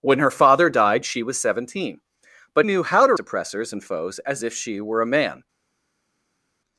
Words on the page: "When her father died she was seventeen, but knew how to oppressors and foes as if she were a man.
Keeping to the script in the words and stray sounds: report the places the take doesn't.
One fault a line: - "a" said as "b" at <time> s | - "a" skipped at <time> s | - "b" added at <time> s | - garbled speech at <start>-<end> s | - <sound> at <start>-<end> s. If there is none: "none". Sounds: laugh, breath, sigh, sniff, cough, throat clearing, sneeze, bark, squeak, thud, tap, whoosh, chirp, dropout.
none